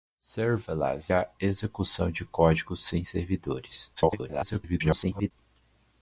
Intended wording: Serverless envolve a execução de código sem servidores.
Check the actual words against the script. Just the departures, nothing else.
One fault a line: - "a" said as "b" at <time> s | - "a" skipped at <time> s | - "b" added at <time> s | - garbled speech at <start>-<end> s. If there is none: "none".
- "envolve" skipped at 1.1 s
- garbled speech at 4.0-5.3 s